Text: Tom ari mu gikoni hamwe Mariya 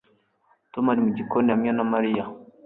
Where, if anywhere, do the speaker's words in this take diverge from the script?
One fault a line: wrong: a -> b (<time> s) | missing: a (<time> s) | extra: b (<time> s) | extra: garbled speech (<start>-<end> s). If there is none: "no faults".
extra: na (1.7 s)